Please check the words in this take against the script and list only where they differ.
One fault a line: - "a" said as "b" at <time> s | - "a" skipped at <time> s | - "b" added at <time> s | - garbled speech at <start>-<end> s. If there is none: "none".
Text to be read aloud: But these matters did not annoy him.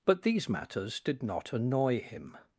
none